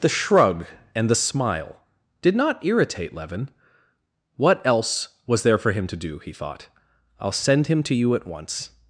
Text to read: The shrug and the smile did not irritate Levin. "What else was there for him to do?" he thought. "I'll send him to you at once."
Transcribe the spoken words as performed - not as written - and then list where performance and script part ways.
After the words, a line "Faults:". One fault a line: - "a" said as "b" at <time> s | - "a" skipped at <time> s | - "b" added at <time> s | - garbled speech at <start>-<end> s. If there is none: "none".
The shrug and the smile did not irritate Levin. "What else was there for him to do?" he thought. "I'll send him to you at once."
Faults:
none